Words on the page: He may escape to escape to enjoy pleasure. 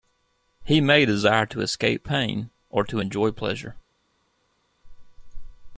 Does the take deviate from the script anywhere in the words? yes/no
yes